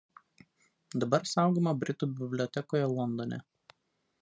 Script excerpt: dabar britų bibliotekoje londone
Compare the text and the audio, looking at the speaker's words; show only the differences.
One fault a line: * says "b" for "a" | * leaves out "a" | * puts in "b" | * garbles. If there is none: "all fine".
* puts in "saugoma"